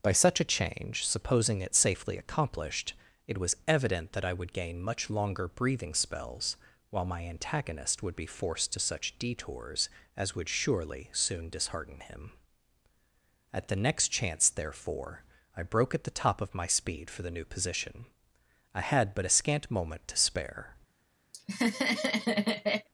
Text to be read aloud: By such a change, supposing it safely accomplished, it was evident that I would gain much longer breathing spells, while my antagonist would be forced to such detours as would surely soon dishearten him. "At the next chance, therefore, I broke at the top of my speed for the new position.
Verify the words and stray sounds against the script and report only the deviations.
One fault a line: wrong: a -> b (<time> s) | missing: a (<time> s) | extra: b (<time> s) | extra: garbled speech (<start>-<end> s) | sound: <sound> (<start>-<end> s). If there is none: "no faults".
extra: I had but a scant moment to spare (18.7 s)
sound: laugh (21.3-22.9 s)